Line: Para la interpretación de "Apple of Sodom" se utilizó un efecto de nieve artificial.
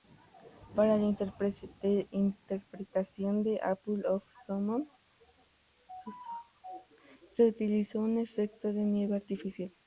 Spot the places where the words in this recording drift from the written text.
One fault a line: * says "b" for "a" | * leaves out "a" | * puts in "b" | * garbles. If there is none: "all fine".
all fine